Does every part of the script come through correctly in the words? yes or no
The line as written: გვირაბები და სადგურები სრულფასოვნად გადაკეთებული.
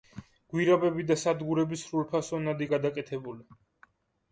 yes